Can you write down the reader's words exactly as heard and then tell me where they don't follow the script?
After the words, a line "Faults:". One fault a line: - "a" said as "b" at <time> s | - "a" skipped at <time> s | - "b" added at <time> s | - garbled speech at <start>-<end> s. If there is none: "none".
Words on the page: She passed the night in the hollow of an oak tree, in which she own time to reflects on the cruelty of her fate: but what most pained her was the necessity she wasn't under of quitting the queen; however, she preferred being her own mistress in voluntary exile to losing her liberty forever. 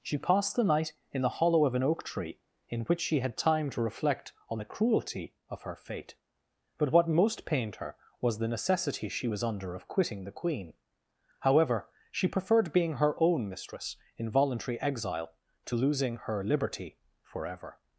She passed the night in the hollow of an oak tree, in which she had time to reflect on the cruelty of her fate: but what most pained her was the necessity she was under of quitting the queen; however, she preferred being her own mistress in voluntary exile to losing her liberty forever.
Faults:
- "own" said as "had" at 3.2 s
- "reflects" said as "reflect" at 3.8 s
- "wasn't" said as "was" at 9.3 s